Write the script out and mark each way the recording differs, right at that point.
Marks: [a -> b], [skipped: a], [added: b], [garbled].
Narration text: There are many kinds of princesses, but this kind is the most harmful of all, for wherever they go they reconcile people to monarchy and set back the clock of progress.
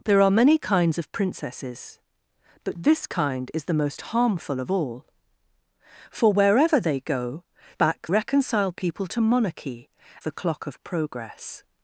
There are many kinds of princesses, but this kind is the most harmful of all, for wherever they go [they -> back] reconcile people to monarchy [skipped: and set back] the clock of progress.